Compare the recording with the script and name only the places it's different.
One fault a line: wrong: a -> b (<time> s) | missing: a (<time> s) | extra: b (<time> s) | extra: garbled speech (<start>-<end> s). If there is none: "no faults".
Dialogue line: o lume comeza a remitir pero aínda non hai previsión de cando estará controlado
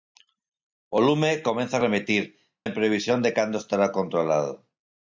missing: pero aínda non (2.2 s)